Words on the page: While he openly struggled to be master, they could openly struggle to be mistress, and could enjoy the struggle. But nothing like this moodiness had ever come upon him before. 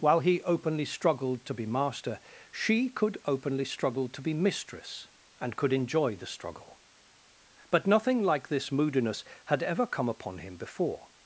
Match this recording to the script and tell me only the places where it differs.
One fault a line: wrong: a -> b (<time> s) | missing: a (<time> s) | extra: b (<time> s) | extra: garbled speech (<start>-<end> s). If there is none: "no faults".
wrong: they -> she (2.5 s)